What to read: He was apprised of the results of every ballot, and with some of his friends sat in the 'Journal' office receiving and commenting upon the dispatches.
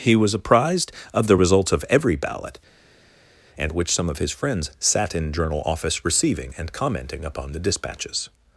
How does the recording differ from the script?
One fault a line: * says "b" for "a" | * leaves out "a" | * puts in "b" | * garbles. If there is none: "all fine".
* says "which" for "with"
* leaves out "the"